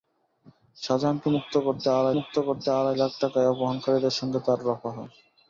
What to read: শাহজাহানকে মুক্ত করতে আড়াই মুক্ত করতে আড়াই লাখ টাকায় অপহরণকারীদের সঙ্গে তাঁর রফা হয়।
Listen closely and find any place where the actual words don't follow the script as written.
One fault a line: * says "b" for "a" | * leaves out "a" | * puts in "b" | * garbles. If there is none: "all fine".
all fine